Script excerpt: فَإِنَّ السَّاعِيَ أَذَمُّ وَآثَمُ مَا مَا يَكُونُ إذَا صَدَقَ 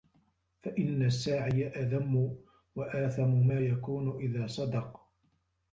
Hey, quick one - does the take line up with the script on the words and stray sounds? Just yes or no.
no